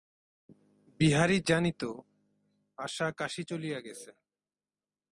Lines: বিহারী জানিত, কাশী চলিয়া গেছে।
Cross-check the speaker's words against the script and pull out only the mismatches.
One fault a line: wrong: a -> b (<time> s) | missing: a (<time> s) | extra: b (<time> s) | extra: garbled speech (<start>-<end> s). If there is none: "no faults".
extra: আশা (2.8 s)